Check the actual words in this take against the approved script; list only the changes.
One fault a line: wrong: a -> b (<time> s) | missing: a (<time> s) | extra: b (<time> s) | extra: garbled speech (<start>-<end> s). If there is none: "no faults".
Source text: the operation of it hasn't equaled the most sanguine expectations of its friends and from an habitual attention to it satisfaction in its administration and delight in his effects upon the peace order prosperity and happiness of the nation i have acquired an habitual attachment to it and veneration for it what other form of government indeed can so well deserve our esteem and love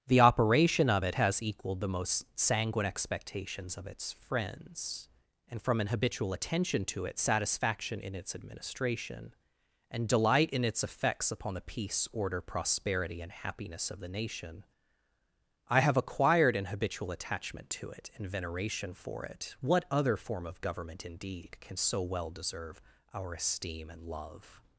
wrong: hasn't -> has (1.2 s)
wrong: his -> its (10.6 s)